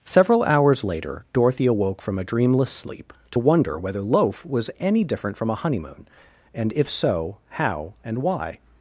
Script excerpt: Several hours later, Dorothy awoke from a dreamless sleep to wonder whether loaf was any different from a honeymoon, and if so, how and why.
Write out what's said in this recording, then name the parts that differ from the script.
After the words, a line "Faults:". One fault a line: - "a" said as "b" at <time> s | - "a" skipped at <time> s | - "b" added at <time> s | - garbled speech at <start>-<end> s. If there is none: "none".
Several hours later, Dorothy awoke from a dreamless sleep to wonder whether loaf was any different from a honeymoon, and if so, how and why.
Faults:
none